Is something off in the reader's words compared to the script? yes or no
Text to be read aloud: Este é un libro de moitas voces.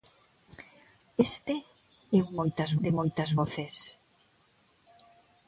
yes